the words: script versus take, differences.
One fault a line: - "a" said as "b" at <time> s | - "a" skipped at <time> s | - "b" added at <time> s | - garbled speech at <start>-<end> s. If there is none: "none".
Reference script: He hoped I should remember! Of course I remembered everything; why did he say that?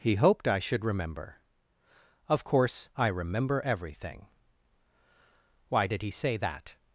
- "remembered" said as "remember" at 3.1 s